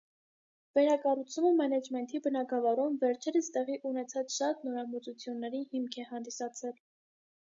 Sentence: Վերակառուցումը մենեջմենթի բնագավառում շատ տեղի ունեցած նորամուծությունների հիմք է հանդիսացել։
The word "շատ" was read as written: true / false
false